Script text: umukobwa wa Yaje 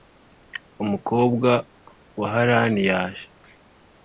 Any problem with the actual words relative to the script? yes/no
yes